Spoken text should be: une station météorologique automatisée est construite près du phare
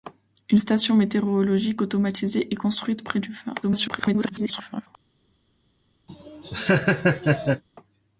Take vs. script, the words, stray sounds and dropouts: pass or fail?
fail